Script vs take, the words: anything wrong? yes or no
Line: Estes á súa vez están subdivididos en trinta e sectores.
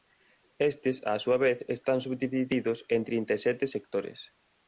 yes